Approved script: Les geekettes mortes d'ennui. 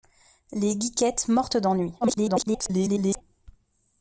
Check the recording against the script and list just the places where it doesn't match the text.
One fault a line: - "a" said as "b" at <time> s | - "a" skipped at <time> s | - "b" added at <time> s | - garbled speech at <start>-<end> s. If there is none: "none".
- garbled speech at 2.0-3.2 s